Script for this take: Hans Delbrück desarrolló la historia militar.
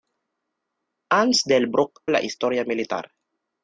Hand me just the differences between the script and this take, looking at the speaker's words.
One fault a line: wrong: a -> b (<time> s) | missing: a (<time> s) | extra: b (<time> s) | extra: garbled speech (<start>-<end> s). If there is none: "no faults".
missing: desarrolló (2.0 s)